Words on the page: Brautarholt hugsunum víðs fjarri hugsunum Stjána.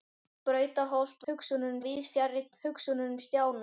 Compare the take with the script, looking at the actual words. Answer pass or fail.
pass